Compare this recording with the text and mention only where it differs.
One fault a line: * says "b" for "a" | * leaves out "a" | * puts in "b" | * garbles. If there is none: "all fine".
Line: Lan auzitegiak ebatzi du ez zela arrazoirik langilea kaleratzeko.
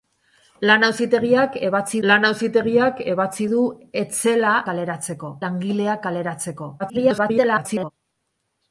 * puts in "lan auzitegiak ebatzi"
* says "kaleratzeko" for "arrazoirik"
* garbles